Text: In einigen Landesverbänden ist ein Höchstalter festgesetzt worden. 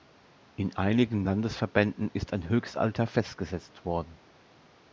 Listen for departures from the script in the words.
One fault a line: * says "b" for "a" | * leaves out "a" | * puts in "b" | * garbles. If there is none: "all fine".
all fine